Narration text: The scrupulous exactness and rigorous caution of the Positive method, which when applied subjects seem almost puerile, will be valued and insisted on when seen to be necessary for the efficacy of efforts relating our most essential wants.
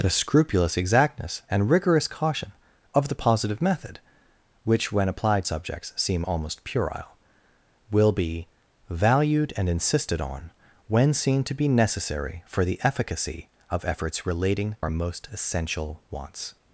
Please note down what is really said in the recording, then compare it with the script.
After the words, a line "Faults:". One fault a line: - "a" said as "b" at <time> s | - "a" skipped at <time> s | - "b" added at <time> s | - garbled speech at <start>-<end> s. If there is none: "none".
The scrupulous exactness and rigorous caution of the Positive method, which when applied subjects seem almost puerile, will be valued and insisted on when seen to be necessary for the efficacy of efforts relating our most essential wants.
Faults:
none